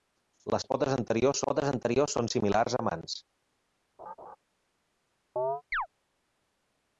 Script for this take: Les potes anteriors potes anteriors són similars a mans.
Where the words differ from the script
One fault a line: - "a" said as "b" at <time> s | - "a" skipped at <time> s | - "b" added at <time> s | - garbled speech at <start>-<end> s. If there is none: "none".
none